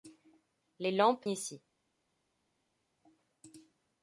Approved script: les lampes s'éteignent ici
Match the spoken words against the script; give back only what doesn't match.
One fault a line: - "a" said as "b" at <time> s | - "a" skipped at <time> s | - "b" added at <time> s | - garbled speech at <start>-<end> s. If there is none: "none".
- "s'éteignent" skipped at 1.3 s